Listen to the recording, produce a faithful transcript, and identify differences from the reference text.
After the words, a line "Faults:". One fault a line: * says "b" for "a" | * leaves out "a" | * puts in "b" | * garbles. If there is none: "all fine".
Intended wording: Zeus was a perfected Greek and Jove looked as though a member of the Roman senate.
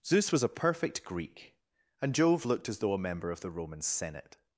Zeus was a perfect Greek and Jove looked as though a member of the Roman senate.
Faults:
* says "perfect" for "perfected"